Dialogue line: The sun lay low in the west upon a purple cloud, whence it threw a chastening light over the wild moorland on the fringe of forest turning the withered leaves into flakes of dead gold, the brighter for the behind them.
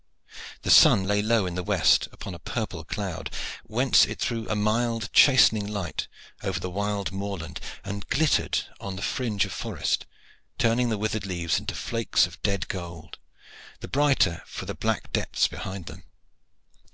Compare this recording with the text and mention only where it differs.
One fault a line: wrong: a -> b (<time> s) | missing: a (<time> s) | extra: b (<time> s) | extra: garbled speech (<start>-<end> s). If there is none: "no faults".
extra: mild (4.6 s)
extra: and glittered (7.8 s)
extra: black depths (14.7 s)